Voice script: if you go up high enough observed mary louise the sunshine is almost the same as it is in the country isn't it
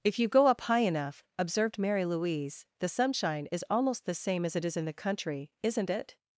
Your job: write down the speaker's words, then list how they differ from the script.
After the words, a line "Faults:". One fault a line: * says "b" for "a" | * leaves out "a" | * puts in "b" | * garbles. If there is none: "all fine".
if you go up high enough observed mary louise the sunshine is almost the same as it is in the country isn't it
Faults:
all fine